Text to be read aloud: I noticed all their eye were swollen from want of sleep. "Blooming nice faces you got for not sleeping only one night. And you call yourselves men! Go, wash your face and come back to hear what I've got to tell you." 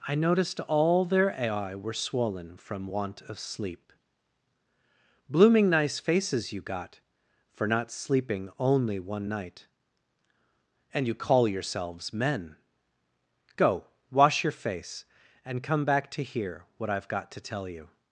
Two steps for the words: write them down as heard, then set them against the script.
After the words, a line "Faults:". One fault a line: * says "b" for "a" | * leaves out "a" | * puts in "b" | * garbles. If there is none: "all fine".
I noticed all their eye were swollen from want of sleep. "Blooming nice faces you got for not sleeping only one night. And you call yourselves men! Go, wash your face and come back to hear what I've got to tell you."
Faults:
all fine